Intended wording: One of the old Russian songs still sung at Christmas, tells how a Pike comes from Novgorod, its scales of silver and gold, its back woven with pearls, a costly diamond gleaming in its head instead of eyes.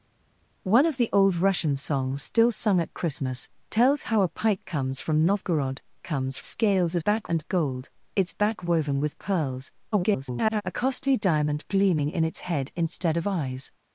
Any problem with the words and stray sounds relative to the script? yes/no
yes